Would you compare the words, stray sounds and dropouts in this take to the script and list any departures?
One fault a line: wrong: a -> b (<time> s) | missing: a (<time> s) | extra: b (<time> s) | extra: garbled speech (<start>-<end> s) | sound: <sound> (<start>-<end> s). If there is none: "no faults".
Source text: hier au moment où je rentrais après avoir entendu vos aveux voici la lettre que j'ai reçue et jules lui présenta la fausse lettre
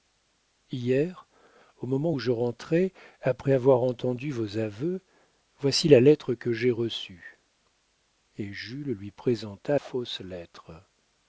missing: la (9.8 s)